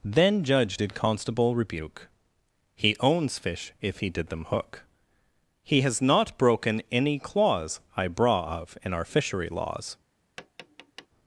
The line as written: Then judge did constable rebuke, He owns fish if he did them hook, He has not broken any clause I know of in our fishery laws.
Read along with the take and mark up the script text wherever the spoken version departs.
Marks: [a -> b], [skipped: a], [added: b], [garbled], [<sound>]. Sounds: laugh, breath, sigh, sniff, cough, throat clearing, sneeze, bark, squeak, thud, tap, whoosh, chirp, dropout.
Then judge did constable rebuke, He owns fish if he did them hook, He has not broken any clause I [know -> braw] of in our fishery laws. [tap]